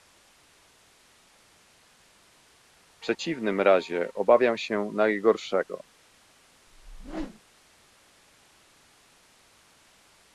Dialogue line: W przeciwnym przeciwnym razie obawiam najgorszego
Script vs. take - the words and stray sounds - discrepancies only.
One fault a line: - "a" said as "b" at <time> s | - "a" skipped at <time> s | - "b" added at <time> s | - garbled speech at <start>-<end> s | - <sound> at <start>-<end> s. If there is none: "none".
- "przeciwnym" skipped at 3.6 s
- "się" added at 4.6 s
- whoosh at 6.7-7.4 s